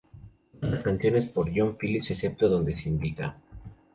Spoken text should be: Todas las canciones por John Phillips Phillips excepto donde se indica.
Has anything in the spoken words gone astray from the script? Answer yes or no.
yes